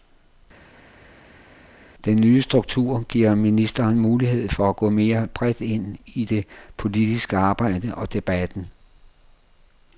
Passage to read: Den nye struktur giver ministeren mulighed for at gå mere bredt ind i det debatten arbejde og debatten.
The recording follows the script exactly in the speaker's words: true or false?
false